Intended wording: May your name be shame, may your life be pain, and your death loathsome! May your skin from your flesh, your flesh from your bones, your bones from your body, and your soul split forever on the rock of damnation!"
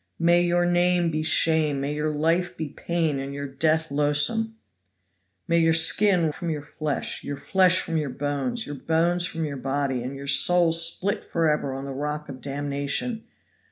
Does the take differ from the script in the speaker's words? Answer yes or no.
no